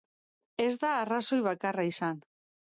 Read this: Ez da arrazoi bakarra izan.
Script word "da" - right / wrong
right